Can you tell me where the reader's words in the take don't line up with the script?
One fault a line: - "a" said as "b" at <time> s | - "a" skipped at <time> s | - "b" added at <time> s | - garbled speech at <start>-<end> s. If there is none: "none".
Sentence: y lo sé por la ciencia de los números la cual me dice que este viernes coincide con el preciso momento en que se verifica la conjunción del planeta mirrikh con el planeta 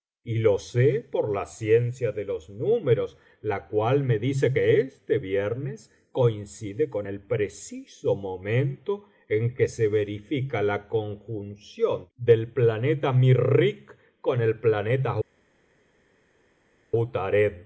none